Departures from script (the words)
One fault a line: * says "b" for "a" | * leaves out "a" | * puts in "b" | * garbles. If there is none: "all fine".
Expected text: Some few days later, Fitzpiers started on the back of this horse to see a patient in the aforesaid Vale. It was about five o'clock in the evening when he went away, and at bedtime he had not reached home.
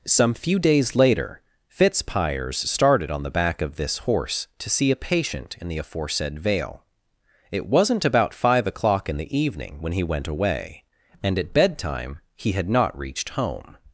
* says "wasn't" for "was"